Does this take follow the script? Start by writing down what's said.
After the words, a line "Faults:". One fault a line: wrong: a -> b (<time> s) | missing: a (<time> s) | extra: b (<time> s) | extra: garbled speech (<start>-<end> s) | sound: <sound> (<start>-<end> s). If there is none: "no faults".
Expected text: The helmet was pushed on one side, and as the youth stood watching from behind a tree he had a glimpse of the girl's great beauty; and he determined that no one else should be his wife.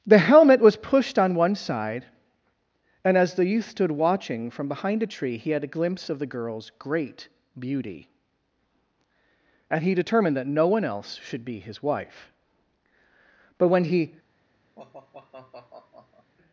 The helmet was pushed on one side, and as the youth stood watching from behind a tree he had a glimpse of the girl's great beauty; and he determined that no one else should be his wife. But when he
Faults:
extra: But when he (13.6 s)
sound: sigh (14.8-16.3 s)